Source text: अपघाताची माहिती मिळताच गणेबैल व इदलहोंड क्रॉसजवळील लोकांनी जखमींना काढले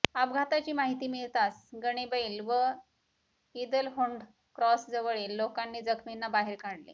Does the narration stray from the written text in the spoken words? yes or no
yes